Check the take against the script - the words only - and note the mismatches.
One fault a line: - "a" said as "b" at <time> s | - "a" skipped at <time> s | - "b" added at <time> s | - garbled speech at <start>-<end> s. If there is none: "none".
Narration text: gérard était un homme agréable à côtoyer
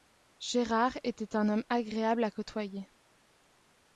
none